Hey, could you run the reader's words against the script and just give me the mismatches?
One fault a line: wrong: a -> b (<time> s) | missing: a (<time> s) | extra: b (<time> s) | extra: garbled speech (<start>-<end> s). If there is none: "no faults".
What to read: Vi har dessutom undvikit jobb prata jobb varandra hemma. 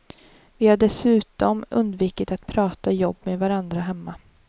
wrong: jobb -> att (2.3 s)
extra: med (3.2 s)